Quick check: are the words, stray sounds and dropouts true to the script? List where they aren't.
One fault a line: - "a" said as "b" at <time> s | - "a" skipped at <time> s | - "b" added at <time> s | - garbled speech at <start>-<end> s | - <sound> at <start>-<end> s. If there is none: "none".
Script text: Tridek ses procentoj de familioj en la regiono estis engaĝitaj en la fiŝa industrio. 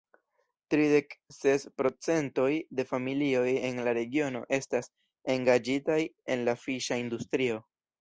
- "estis" said as "estas" at 4.6 s